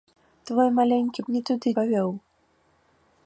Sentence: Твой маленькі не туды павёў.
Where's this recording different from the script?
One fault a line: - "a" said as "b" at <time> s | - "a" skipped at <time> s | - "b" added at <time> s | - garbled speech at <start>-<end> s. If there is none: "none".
none